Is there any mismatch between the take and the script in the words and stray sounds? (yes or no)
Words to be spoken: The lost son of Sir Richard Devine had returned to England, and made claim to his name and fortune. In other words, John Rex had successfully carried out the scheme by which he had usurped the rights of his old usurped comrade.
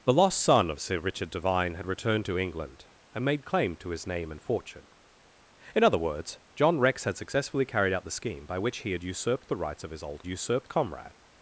no